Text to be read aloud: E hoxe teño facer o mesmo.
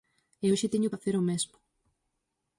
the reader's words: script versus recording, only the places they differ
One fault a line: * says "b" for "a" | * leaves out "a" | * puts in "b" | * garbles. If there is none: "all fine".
all fine